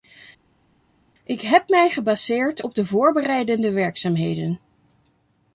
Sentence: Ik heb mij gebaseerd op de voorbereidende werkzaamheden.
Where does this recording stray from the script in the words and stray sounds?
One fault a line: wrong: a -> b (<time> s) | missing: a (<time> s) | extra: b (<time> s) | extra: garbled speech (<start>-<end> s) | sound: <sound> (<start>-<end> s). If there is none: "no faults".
no faults